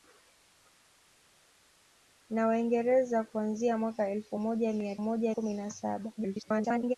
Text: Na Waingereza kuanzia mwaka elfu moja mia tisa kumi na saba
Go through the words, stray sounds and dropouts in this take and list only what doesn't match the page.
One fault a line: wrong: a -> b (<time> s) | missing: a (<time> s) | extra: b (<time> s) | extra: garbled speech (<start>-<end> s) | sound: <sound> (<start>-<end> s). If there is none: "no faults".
wrong: tisa -> moja (5.0 s)
extra: garbled speech (6.2-7.0 s)